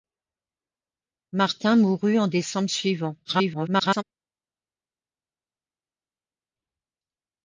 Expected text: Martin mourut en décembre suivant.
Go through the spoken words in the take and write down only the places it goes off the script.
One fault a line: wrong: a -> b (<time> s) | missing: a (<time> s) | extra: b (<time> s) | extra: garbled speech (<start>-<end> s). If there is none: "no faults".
extra: garbled speech (3.2-4.0 s)